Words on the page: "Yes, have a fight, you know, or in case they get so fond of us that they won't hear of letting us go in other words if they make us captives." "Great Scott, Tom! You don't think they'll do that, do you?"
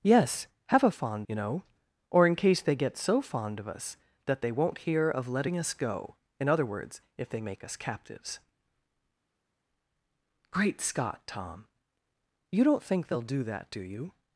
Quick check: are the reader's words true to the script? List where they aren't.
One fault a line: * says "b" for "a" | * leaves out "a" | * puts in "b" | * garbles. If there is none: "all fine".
* says "fond" for "fight"